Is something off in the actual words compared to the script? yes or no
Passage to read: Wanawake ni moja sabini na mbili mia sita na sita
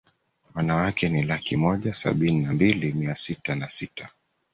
yes